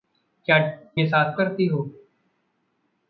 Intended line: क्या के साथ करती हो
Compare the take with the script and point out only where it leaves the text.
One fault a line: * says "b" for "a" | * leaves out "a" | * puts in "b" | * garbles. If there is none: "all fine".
all fine